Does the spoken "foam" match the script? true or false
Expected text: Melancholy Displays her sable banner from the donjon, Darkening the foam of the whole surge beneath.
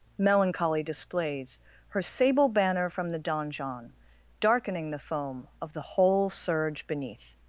true